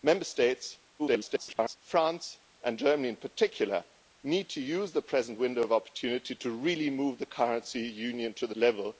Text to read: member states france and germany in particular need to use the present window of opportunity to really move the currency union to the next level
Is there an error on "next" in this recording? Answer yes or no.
yes